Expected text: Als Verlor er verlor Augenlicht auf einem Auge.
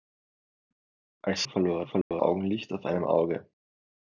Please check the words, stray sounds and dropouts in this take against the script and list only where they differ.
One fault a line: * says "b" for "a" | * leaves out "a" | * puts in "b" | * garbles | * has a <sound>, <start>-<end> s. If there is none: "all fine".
* has a dropout, 2.0-2.1 s